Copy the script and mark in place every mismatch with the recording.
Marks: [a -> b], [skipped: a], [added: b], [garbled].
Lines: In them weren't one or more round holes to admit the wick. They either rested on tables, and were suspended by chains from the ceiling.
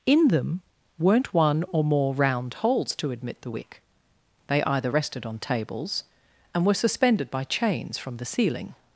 In them weren't one or more round holes to admit the wick. They either rested on tables, and were suspended by chains from the ceiling.